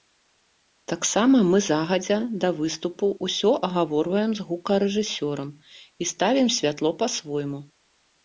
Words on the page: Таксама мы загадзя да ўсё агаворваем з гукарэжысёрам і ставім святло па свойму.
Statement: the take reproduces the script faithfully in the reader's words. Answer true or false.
false